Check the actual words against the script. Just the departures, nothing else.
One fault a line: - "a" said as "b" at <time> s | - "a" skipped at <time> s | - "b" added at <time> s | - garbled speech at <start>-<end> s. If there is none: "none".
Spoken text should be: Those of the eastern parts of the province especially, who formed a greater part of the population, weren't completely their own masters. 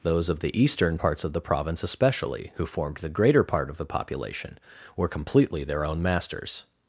- "a" said as "the" at 3.0 s
- "weren't" said as "were" at 5.0 s